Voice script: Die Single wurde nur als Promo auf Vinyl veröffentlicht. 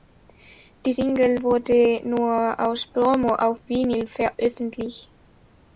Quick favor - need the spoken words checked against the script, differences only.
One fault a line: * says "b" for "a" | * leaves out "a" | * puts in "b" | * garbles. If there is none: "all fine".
all fine